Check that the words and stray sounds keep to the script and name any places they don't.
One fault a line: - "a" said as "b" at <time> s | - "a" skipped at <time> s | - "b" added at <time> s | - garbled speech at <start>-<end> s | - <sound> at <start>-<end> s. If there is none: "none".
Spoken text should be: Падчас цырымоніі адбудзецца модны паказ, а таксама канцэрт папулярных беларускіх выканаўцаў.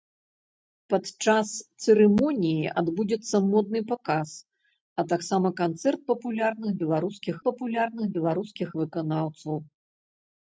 - "папулярных беларускіх" added at 7.5 s